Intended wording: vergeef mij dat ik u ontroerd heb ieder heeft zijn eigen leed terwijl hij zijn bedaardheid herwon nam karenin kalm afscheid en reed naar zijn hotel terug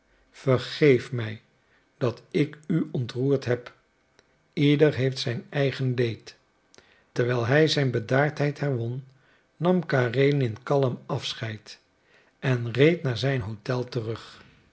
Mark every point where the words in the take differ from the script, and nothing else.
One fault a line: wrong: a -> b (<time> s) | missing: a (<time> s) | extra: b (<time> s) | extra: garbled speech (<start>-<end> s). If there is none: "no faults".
no faults